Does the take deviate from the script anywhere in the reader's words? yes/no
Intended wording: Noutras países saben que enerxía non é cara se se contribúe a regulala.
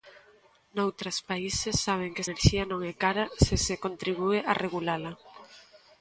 no